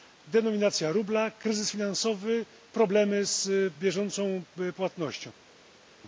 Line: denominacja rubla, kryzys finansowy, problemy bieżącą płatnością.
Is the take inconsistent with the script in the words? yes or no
yes